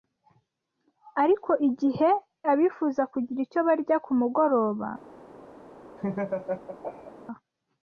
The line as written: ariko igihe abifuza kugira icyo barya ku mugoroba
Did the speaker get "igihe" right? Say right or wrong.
right